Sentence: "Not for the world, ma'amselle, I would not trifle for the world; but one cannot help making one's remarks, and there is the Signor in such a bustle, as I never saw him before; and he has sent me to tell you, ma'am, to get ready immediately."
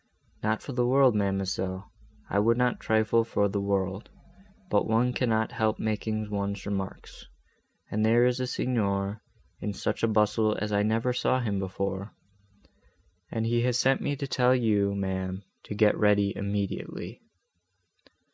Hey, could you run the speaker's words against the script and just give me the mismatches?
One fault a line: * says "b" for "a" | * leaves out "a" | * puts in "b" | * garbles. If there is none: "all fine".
all fine